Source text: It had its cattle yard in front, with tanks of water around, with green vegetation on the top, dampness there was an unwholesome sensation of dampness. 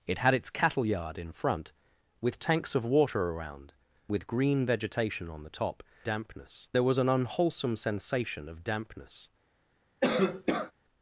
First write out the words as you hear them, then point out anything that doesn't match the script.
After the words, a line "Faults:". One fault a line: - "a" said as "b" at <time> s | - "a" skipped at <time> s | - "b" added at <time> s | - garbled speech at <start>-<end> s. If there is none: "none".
It had its cattle yard in front, with tanks of water around, with green vegetation on the top, dampness there was an unwholesome sensation of dampness.
Faults:
none